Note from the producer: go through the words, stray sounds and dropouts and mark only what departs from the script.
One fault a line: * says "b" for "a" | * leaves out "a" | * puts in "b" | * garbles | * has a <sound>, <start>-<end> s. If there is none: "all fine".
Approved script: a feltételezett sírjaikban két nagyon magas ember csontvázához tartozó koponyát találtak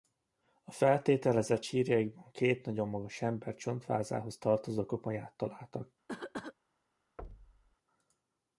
* has a cough, 6.1-6.5 s
* has a thud, 7.2-7.8 s